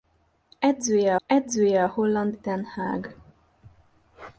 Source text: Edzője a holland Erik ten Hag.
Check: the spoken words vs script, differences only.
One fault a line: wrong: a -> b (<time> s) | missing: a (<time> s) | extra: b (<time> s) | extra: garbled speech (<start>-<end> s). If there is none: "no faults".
extra: edzője (1.3 s)
missing: Erik (2.4 s)